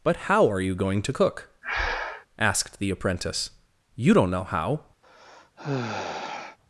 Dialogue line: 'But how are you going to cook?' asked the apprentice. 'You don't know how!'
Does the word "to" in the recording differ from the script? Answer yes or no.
no